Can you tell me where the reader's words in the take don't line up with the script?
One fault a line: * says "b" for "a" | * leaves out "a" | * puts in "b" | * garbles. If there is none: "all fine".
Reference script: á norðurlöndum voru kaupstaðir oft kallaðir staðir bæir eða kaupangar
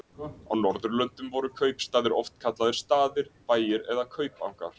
all fine